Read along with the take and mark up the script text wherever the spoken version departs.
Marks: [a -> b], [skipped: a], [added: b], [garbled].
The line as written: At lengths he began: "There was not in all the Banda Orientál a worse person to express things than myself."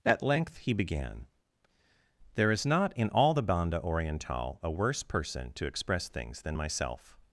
At [lengths -> length] he began: "There [was -> is] not in all the Banda Orientál a worse person to express things than myself."